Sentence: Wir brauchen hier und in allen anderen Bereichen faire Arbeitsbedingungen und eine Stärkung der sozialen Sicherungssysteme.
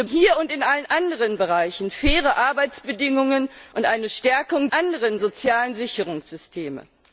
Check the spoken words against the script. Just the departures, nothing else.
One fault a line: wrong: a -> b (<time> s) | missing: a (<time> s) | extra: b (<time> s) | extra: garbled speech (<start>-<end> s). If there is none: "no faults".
missing: brauchen (0.1 s)
wrong: der -> anderen (4.7 s)